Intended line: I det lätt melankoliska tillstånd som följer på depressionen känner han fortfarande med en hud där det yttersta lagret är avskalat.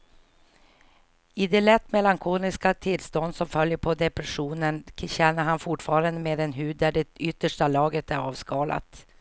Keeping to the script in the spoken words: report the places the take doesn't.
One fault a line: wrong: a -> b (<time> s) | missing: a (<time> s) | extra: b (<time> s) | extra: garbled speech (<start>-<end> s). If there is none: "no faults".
no faults